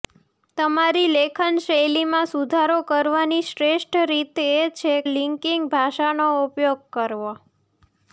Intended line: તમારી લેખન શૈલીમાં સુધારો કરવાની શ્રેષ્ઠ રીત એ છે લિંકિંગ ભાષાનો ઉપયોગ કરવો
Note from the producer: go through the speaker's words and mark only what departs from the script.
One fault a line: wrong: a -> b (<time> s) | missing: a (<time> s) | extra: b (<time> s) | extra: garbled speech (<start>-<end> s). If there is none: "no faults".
no faults